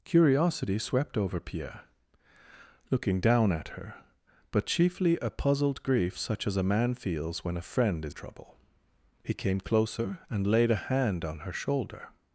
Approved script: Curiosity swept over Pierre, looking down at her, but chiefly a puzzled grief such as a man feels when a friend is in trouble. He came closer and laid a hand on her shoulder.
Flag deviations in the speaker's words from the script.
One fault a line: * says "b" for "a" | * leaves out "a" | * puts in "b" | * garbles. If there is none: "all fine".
* leaves out "in"